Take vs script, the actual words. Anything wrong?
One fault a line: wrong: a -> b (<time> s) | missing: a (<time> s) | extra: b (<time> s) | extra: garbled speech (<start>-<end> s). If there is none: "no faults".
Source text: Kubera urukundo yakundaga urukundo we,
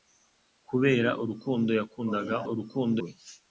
no faults